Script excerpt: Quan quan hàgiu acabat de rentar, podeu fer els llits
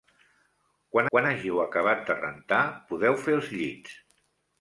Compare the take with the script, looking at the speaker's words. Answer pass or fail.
pass